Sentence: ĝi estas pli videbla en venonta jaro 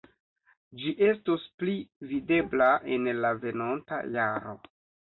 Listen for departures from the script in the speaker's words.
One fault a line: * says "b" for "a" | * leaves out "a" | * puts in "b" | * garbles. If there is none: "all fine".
* says "estos" for "estas"
* puts in "la"